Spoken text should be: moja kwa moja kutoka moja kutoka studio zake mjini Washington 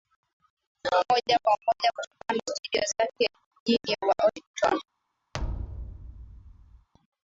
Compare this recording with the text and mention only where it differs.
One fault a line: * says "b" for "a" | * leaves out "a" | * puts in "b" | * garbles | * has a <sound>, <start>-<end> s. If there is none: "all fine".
* leaves out "moja kutoka"
* has a thud, 5.3-6.9 s